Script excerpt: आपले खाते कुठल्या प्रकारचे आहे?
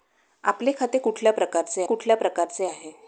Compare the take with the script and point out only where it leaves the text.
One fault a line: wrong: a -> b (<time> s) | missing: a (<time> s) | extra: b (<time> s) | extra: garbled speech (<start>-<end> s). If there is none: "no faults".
extra: कुठल्या प्रकारचे (1.8 s)